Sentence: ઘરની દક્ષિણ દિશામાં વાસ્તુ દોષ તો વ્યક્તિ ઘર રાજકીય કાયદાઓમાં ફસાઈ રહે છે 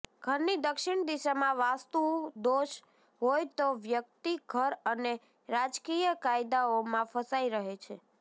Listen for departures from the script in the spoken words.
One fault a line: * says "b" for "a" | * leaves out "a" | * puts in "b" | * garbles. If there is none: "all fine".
* puts in "હોય"
* puts in "અને"